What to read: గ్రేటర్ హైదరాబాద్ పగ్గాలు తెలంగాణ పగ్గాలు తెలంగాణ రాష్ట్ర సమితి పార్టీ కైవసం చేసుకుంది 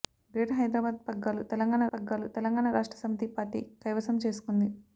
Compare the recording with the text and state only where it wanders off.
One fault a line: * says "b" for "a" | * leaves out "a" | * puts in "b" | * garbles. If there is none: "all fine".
all fine